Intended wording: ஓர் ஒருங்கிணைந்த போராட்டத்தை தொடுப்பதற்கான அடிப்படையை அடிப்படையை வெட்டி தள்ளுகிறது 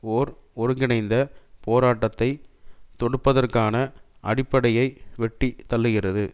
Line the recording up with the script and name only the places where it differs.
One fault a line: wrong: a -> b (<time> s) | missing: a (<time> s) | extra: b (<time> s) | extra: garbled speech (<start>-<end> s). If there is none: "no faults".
missing: அடிப்படையை (4.9 s)